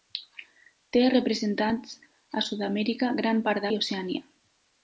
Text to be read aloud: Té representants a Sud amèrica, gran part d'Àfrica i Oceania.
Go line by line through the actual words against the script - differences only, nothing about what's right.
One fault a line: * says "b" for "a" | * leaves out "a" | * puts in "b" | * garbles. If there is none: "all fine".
* leaves out "d'Àfrica"